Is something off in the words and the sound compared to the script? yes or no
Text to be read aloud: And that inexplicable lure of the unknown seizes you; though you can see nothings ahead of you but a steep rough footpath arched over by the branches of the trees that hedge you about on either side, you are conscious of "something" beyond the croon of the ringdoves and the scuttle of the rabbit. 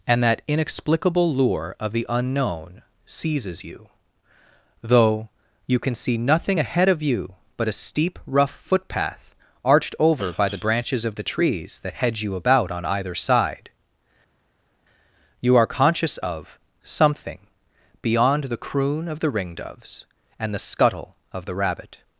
yes